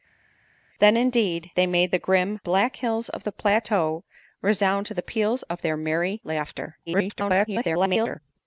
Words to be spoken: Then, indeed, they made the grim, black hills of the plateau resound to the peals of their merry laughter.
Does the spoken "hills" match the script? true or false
true